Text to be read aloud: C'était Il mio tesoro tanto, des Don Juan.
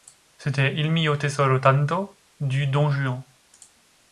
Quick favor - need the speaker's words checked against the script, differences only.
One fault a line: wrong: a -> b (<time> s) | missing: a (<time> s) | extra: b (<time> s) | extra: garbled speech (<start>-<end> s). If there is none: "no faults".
wrong: des -> du (2.4 s)